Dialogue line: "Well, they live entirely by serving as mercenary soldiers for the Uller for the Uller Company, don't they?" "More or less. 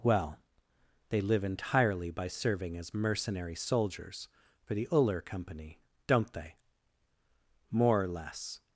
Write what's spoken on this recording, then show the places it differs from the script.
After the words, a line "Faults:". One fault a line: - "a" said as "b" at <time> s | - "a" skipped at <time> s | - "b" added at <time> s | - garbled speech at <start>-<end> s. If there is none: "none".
"Well, they live entirely by serving as mercenary soldiers for the Uller Company, don't they?" "More or less.
Faults:
- "for the Uller" skipped at 5.2 s